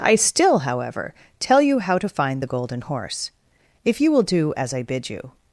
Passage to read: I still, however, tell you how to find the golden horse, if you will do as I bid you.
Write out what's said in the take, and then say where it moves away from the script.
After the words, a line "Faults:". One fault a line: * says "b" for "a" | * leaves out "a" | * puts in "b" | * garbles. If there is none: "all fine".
I still, however, tell you how to find the golden horse, if you will do as I bid you.
Faults:
all fine